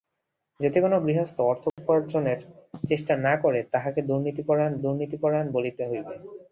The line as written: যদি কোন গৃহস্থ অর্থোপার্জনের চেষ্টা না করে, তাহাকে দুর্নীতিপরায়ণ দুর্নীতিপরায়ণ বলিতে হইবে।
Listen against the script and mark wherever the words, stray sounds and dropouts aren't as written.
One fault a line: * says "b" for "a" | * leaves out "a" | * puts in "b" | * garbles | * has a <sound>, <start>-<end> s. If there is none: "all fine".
* has a dropout, 1.7-1.8 s